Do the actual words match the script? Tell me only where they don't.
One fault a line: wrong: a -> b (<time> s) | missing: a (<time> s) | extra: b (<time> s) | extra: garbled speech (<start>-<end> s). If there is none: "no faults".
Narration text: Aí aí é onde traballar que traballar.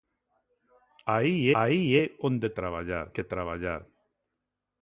no faults